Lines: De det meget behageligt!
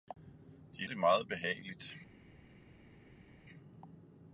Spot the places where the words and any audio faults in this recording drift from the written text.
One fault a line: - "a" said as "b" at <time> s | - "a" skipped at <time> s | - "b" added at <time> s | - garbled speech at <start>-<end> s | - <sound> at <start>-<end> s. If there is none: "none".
none